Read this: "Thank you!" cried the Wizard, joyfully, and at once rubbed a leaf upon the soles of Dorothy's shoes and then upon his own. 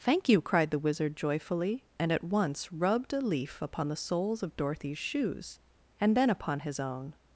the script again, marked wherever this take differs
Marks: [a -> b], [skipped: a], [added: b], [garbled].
"Thank you!" cried the Wizard, joyfully, and at once rubbed a leaf upon the soles of Dorothy's shoes and then upon his own.